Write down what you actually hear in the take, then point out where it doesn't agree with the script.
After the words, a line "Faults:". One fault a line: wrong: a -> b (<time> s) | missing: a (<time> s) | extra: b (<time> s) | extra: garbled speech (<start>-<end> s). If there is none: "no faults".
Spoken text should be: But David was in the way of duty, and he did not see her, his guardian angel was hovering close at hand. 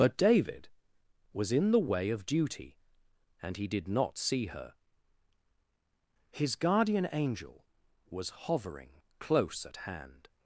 But David was in the way of duty, and he did not see her, his guardian angel was hovering close at hand.
Faults:
no faults